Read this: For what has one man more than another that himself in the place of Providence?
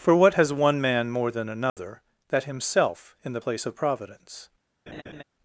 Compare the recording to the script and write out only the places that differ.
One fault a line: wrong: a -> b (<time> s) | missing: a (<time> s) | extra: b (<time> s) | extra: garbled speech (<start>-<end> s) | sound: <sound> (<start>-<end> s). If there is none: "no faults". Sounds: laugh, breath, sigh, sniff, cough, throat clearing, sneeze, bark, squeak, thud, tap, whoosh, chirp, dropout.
sound: dropout (1.7-1.8 s)
sound: laugh (4.9-5.2 s)